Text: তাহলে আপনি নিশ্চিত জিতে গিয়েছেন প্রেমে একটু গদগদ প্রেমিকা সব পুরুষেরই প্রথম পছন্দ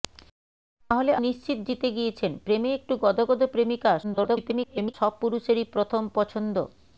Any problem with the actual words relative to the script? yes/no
yes